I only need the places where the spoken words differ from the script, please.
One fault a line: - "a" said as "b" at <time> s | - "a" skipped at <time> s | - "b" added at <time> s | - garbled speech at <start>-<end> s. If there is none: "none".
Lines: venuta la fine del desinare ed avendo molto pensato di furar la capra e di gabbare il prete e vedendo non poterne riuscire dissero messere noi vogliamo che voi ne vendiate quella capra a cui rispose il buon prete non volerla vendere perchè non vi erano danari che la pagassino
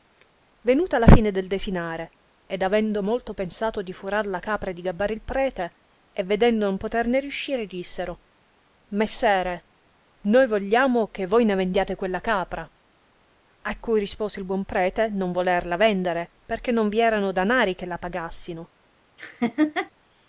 none